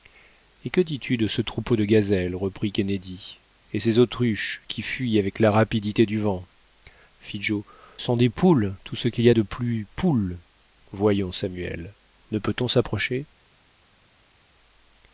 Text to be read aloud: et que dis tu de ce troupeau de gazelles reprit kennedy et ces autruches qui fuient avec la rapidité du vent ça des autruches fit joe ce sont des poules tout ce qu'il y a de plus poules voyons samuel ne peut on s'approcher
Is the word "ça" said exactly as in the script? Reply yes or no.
no